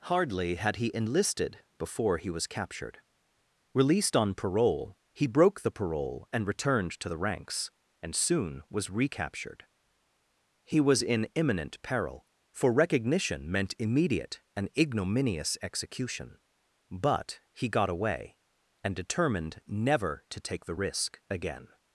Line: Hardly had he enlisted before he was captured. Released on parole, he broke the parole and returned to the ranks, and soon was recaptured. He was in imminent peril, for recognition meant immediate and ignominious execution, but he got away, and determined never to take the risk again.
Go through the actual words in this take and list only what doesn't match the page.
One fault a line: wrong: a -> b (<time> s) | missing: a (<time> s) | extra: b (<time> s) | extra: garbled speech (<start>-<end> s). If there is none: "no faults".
no faults